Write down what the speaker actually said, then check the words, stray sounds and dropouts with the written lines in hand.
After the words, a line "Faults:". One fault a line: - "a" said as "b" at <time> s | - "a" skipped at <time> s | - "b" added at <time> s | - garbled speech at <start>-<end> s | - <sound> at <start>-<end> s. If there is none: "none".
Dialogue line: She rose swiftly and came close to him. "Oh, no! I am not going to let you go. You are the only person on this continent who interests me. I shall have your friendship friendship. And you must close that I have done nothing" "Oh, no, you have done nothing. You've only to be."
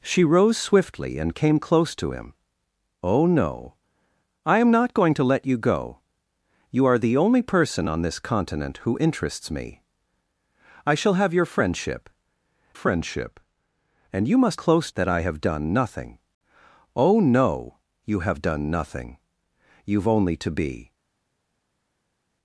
She rose swiftly and came close to him. "Oh, no! I am not going to let you go. You are the only person on this continent who interests me. I shall have your friendship friendship. And you must close that I have done nothing" "Oh, no, you have done nothing. You've only to be."
Faults:
none